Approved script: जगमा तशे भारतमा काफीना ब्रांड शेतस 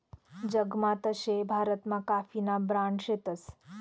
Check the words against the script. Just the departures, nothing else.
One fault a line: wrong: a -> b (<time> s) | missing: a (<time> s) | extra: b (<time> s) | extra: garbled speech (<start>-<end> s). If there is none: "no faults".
no faults